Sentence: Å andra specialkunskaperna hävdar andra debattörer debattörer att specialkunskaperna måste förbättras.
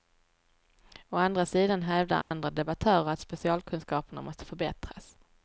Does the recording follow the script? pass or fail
fail